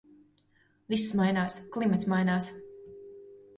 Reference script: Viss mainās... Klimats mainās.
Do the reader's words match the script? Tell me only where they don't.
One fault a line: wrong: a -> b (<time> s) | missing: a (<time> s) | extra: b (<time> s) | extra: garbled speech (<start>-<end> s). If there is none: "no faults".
no faults